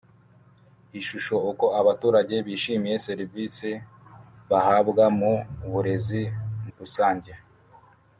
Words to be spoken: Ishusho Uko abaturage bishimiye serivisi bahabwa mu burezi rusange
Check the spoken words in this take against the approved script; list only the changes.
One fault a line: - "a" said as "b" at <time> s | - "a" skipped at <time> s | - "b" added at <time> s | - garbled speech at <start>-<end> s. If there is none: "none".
none